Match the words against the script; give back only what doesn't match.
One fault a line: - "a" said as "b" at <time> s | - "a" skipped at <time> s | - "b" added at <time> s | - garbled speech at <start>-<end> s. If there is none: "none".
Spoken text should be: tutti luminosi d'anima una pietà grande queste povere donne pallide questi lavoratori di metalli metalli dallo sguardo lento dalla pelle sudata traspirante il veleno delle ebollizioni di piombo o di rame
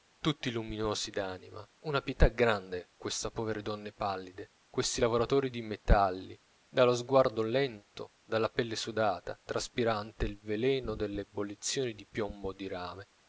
- "metalli" skipped at 6.4 s